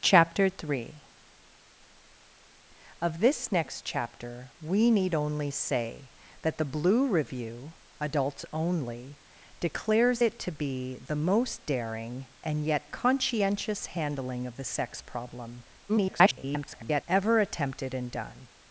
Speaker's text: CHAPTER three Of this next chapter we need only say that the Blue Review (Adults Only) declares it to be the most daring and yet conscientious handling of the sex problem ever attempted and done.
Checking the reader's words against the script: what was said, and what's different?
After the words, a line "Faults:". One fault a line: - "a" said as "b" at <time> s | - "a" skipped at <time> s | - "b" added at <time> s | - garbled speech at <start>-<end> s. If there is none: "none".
CHAPTER three Of this next chapter we need only say that the Blue Review (Adults Only) declares it to be the most daring and yet conscientious handling of the sex problem [garbled] ever attempted and done.
Faults:
- garbled speech at 15.9-17.0 s